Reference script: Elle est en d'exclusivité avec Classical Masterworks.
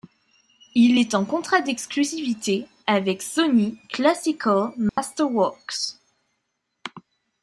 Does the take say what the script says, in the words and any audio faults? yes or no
no